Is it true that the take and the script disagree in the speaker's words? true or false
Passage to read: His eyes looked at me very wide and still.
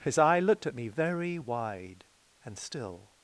true